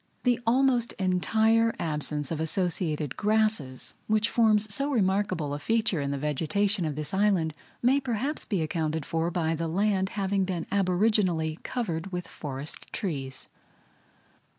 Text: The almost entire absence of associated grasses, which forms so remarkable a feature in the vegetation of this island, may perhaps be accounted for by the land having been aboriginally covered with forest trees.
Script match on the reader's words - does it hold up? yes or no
yes